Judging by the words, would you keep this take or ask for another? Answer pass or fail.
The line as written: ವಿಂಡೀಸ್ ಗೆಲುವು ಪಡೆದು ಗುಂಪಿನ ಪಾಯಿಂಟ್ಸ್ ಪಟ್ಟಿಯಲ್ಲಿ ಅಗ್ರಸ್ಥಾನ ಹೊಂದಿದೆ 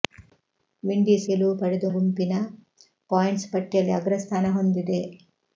pass